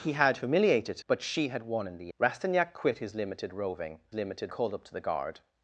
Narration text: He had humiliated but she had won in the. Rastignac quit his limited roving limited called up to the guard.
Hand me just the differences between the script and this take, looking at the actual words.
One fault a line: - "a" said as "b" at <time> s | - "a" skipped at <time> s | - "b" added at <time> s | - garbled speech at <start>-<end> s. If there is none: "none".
none